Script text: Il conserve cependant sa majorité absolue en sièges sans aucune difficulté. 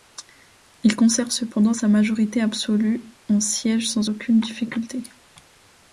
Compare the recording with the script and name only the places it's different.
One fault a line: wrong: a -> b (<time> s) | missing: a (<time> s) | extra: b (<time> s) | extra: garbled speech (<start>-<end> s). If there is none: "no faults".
no faults